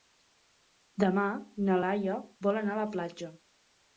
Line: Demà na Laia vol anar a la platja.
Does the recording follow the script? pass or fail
pass